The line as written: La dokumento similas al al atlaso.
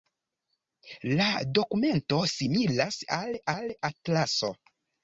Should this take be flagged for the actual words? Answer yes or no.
no